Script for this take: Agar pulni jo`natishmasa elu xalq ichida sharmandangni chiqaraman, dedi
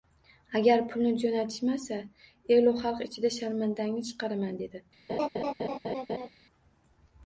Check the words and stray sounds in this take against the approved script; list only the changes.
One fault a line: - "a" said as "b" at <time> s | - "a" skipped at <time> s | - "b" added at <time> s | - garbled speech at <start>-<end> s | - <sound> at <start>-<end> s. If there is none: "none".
- laugh at 5.1-6.3 s